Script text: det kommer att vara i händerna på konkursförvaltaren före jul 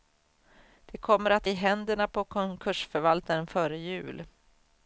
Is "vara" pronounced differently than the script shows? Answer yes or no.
yes